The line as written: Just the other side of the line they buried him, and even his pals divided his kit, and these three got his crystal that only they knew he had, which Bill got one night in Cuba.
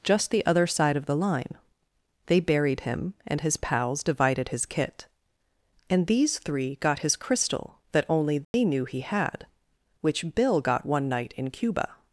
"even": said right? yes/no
no